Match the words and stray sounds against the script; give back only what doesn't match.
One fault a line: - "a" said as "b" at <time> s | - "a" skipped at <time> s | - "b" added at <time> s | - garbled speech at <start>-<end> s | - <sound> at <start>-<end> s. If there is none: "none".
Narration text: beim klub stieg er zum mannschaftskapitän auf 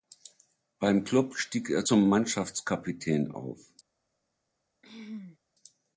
- throat clearing at 4.8-5.4 s